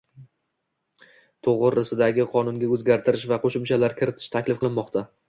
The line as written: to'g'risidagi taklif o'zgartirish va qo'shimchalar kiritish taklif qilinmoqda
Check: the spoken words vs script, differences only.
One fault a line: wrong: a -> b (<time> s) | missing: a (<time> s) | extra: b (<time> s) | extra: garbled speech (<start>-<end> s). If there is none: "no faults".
wrong: taklif -> qonunga (2.3 s)